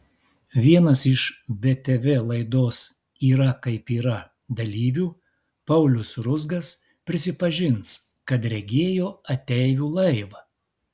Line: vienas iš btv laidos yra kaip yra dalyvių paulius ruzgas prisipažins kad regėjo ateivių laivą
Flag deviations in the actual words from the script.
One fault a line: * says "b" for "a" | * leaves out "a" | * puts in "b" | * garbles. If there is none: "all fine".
all fine